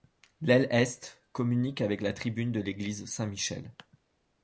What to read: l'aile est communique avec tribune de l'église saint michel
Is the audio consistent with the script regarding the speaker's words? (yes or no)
no